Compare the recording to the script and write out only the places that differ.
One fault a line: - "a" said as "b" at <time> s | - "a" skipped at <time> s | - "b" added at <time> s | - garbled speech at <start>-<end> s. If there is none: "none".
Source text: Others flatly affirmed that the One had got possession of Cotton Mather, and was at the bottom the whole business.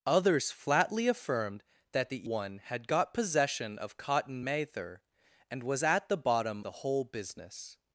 none